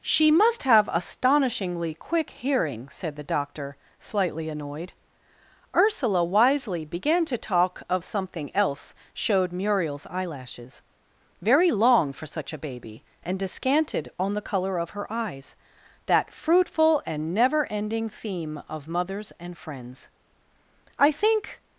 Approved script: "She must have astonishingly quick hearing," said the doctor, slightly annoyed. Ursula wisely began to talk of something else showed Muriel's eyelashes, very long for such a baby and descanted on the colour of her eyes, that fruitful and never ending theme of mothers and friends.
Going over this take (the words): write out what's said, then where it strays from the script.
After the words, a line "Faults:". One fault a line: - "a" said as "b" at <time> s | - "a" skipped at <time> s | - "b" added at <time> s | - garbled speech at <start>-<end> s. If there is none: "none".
"She must have astonishingly quick hearing," said the doctor, slightly annoyed. Ursula wisely began to talk of something else showed Muriel's eyelashes, very long for such a baby and descanted on the colour of her eyes, that fruitful and never ending theme of mothers and friends. "I think
Faults:
- "I think" added at 21.0 s